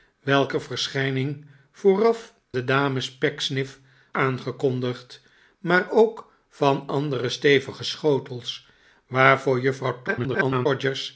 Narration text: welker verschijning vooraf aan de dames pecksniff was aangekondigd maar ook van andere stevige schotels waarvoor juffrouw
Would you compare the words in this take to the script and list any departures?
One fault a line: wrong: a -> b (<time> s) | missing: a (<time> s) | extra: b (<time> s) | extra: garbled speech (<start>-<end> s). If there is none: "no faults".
missing: aan (2.3 s)
missing: was (3.8 s)
extra: garbled speech (10.1-10.7 s)